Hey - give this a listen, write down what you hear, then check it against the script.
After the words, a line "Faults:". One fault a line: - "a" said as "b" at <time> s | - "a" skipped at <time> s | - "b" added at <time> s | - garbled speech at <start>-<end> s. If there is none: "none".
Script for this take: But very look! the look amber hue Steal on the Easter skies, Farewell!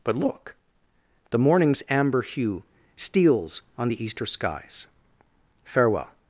But look! the morning's amber hue Steals on the Easter skies, Farewell!
Faults:
- "very" skipped at 0.2 s
- "look" said as "morning's" at 1.4 s
- "Steal" said as "Steals" at 3.0 s